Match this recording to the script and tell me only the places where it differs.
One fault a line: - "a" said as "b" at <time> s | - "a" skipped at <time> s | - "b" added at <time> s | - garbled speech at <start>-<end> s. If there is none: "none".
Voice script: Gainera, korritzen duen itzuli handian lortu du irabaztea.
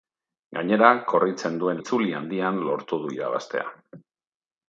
none